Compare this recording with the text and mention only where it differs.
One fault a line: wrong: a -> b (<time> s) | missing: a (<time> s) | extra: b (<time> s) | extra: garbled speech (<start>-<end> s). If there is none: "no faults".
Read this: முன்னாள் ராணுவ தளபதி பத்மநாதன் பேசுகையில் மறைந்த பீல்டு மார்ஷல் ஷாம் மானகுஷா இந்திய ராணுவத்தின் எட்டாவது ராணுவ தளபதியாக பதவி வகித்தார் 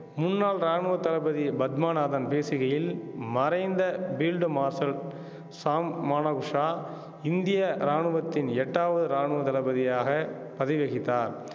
no faults